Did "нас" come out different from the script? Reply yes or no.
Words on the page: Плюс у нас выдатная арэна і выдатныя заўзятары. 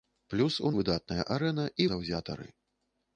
yes